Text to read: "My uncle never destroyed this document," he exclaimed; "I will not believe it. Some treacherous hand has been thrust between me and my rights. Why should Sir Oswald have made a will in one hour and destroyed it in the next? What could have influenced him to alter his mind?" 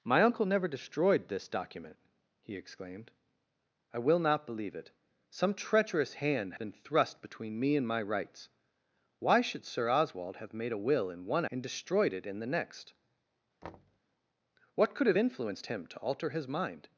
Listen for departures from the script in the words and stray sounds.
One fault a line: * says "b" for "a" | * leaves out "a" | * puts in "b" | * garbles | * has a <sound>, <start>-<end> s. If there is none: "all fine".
* leaves out "has"
* leaves out "hour"
* has a thud, 13.6-14.0 s